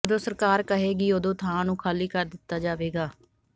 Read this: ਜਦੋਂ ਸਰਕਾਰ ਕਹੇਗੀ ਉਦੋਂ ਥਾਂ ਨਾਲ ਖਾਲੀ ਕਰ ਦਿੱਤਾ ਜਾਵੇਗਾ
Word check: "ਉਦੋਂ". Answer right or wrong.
right